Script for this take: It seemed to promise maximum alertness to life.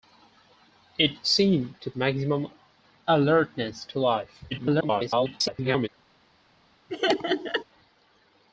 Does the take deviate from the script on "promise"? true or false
true